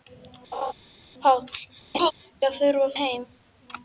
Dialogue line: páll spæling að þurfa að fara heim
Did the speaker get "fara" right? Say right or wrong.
wrong